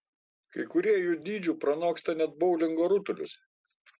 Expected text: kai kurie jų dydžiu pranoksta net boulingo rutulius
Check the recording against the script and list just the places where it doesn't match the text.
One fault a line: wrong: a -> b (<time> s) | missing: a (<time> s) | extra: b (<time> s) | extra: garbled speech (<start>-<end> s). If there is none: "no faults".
no faults